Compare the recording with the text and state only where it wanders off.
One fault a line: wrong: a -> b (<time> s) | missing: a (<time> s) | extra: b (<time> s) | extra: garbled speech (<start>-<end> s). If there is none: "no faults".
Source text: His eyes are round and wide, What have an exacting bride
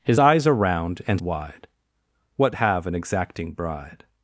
no faults